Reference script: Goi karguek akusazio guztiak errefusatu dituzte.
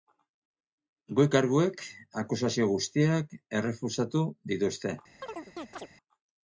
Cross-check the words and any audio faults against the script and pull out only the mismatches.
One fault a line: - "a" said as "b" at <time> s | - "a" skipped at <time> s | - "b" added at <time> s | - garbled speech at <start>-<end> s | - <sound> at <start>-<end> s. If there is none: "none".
- chirp at 5.2-5.9 s